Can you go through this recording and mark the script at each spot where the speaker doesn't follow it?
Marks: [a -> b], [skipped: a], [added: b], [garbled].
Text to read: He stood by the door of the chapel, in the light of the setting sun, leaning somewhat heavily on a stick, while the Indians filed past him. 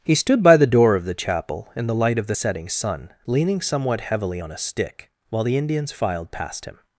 He stood by the door of the chapel, in the light of the setting sun, leaning somewhat heavily on a stick, while the Indians filed past him.